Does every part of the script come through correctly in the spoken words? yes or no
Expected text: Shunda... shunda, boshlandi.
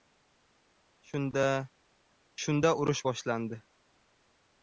no